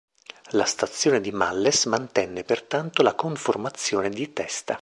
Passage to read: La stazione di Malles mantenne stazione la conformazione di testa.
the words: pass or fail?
fail